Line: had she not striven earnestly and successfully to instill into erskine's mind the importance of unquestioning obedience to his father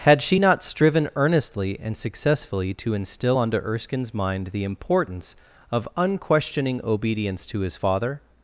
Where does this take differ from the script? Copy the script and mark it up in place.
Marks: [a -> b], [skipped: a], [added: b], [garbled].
had she not striven earnestly and successfully to instill [into -> onto] erskine's mind the importance of unquestioning obedience to his father